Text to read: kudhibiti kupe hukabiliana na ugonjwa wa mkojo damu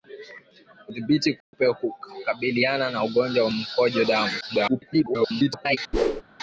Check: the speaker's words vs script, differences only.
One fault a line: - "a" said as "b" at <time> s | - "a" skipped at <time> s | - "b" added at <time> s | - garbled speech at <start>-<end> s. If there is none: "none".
- garbled speech at 4.4-5.8 s